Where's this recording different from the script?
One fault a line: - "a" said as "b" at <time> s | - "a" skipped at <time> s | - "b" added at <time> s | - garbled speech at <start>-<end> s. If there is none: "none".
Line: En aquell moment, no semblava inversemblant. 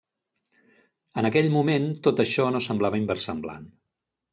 - "tot això" added at 2.1 s